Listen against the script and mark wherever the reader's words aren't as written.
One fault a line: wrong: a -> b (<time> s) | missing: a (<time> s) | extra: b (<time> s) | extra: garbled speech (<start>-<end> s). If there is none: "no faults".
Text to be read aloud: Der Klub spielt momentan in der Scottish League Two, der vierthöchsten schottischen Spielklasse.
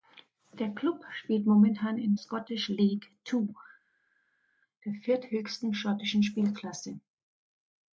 missing: der (2.1 s)